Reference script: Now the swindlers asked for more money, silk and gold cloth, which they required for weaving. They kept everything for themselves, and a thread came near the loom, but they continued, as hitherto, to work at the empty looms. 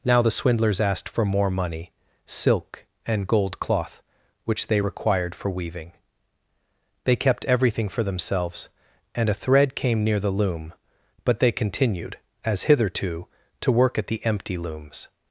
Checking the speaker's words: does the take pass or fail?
pass